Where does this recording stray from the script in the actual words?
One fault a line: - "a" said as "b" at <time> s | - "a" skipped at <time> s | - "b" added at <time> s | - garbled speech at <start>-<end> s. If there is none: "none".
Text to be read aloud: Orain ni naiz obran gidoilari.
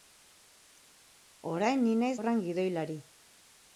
none